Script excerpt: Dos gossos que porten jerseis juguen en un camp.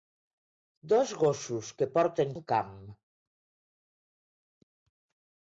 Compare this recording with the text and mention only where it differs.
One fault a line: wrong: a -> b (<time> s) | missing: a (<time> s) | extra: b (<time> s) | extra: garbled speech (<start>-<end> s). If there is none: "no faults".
missing: jerseis juguen en (2.3 s)